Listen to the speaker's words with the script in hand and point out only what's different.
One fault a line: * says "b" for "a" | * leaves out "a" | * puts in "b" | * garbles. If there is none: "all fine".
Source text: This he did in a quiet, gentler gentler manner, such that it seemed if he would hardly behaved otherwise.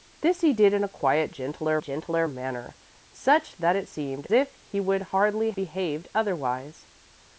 all fine